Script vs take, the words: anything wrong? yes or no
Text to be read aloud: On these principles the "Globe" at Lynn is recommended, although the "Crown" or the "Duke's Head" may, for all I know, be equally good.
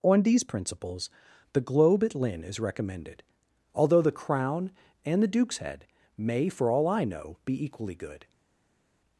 yes